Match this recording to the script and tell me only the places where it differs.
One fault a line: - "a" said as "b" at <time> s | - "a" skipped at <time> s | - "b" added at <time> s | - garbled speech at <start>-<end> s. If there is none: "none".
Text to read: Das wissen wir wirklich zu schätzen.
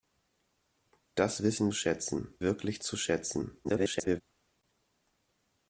- "wir" said as "schätzen" at 1.7 s
- garbled speech at 3.6-4.2 s